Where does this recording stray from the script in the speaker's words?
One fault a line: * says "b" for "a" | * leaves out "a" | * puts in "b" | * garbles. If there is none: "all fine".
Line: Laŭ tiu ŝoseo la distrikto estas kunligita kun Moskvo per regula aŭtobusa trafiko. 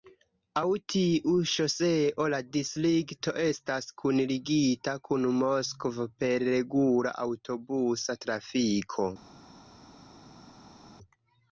all fine